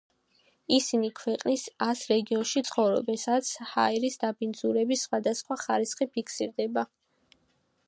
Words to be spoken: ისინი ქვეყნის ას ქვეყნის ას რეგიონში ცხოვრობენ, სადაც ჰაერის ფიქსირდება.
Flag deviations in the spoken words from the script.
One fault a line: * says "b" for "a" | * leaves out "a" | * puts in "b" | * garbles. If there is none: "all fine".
* leaves out "ქვეყნის ას"
* puts in "დაბინძურების სხვადასხვა ხარისხი"